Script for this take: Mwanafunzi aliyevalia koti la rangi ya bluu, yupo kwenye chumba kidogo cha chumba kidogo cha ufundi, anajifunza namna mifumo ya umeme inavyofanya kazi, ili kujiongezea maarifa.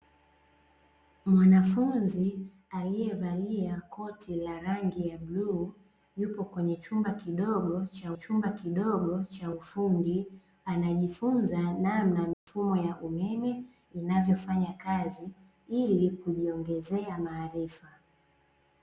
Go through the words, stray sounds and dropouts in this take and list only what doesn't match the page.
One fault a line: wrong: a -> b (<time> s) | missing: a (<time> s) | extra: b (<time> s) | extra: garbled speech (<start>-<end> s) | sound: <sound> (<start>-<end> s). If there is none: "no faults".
sound: dropout (12.3-12.5 s)